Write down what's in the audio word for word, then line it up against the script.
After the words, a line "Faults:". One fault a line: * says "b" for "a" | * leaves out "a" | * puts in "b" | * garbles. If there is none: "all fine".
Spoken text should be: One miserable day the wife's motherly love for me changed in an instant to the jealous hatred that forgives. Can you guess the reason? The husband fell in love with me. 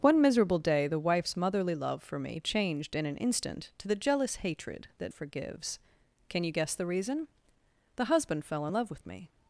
One miserable day the wife's motherly love for me changed in an instant to the jealous hatred that forgives. Can you guess the reason? The husband fell in love with me.
Faults:
all fine